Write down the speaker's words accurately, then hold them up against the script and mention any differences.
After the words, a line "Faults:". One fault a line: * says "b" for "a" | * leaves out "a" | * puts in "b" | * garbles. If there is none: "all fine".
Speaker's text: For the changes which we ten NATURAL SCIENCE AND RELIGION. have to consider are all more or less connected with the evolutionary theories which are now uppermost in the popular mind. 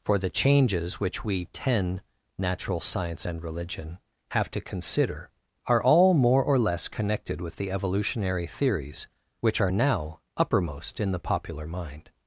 For the changes which we ten NATURAL SCIENCE AND RELIGION. have to consider are all more or less connected with the evolutionary theories which are now uppermost in the popular mind.
Faults:
all fine